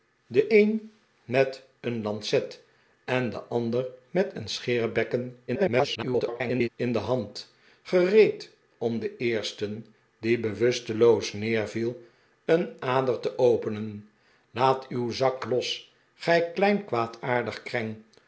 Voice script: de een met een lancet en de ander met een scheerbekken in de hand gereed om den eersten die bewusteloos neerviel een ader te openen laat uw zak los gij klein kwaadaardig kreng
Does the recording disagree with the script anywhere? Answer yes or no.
yes